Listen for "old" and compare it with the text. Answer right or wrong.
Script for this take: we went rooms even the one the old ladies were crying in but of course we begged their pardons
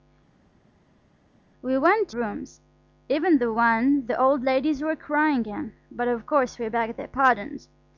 right